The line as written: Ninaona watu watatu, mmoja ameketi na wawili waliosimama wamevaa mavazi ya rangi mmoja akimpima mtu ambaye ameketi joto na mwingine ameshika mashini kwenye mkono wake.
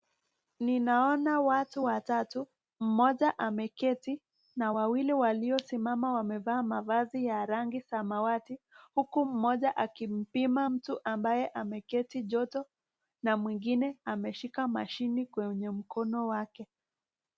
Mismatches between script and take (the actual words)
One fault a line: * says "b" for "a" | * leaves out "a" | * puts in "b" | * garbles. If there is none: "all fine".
* puts in "samawati huku"